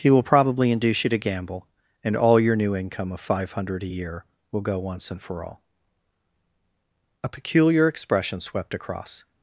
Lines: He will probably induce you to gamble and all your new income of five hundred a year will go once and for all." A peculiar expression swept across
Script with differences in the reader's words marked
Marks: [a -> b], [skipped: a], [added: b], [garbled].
He will probably induce you to gamble and all your new income of five hundred a year will go once and for all." A peculiar expression swept across